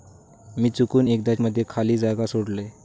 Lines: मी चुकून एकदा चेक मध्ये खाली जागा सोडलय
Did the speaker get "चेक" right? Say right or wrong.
wrong